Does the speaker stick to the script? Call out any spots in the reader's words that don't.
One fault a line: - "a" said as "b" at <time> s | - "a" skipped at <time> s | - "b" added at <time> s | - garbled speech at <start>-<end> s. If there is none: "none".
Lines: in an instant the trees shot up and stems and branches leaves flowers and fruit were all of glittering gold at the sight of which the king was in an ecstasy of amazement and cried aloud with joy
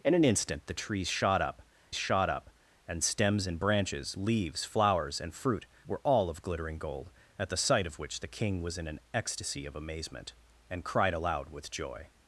- "shot up" added at 1.9 s